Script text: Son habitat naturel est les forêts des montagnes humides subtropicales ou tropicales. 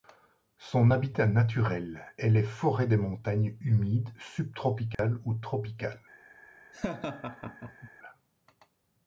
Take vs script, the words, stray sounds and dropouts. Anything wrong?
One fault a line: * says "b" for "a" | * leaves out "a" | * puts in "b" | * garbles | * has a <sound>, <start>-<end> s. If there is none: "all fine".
* has a dropout, 4.9-5.0 s
* has a laugh, 6.7-7.9 s